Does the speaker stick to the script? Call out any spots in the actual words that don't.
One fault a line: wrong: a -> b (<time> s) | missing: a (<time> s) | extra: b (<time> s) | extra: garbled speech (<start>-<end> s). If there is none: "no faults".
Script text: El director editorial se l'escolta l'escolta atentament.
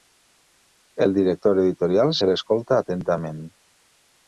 missing: l'escolta (2.8 s)